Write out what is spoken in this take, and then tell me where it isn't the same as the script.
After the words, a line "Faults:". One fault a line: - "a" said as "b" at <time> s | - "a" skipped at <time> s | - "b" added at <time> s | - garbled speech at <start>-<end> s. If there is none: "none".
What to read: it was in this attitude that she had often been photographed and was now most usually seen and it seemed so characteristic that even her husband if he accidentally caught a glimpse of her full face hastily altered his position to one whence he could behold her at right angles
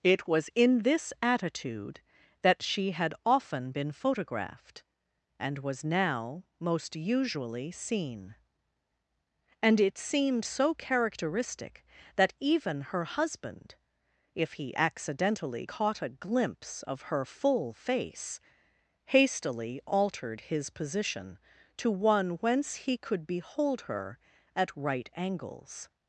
it was in this attitude that she had often been photographed and was now most usually seen and it seemed so characteristic that even her husband if he accidentally caught a glimpse of her full face hastily altered his position to one whence he could behold her at right angles
Faults:
none